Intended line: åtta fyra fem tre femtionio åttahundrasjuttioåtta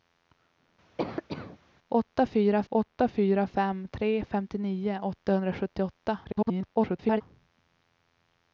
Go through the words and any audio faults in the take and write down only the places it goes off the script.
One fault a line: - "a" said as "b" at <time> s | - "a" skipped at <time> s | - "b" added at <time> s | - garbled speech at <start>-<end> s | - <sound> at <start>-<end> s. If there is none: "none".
- cough at 1.0-1.6 s
- "åtta fyra" added at 2.7 s
- garbled speech at 6.2-7.2 s